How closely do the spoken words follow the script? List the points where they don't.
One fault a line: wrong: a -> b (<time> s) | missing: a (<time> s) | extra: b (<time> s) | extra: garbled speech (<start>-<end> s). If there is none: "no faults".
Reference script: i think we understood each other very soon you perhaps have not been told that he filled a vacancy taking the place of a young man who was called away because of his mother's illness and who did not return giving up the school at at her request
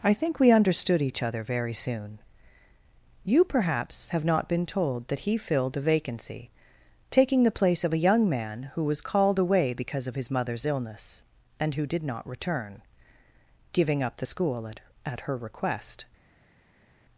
no faults